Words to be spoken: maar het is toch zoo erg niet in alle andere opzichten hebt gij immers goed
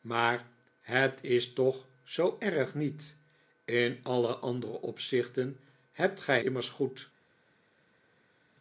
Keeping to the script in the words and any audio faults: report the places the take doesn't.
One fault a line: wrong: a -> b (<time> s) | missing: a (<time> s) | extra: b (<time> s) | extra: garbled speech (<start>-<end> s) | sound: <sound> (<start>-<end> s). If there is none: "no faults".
no faults